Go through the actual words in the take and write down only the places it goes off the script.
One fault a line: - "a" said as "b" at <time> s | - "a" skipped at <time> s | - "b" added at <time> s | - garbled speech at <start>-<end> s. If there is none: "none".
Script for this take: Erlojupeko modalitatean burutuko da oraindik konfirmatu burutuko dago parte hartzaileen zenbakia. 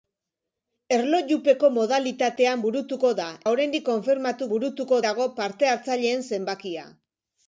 none